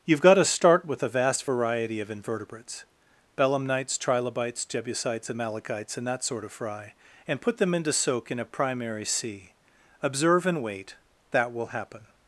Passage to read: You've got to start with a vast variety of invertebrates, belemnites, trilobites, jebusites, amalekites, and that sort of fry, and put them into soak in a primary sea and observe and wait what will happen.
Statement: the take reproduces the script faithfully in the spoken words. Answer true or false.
false